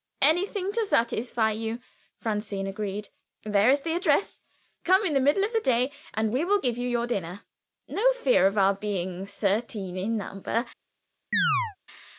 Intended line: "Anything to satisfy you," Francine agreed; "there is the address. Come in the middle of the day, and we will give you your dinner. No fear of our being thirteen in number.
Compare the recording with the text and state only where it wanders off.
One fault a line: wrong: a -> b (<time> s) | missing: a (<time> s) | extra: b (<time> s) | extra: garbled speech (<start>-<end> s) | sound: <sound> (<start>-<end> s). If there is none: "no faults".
sound: chirp (11.3-11.8 s)